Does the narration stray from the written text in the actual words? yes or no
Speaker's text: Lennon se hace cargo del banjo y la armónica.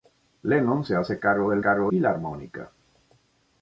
yes